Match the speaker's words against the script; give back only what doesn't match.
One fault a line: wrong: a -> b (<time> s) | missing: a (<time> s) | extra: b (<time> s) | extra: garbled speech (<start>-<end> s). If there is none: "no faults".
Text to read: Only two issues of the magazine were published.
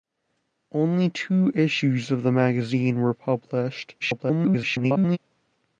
extra: garbled speech (4.0-5.2 s)